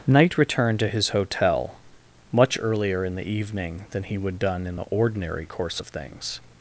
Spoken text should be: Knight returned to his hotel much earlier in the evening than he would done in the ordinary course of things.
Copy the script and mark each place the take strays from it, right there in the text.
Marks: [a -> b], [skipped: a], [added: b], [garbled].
Knight returned to his hotel much earlier in the evening than he would done in the ordinary course of things.